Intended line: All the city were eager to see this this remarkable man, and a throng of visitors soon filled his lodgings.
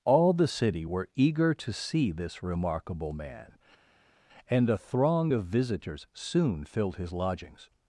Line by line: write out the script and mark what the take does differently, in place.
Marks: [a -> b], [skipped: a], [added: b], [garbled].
All the city were eager to see this [skipped: this] remarkable man, and a throng of visitors soon filled his lodgings.